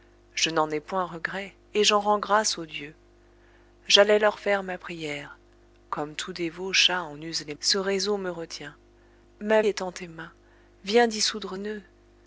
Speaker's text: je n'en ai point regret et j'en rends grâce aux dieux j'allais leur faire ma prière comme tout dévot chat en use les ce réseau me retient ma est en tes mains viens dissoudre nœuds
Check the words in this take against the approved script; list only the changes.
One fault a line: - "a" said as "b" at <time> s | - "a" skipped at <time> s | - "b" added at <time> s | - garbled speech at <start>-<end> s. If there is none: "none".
none